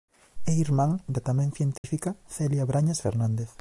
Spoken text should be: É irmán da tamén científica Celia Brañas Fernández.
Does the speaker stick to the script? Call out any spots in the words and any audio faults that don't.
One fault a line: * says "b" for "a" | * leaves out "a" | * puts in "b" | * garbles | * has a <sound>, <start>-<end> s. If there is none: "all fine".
* has a dropout, 1.8-1.8 s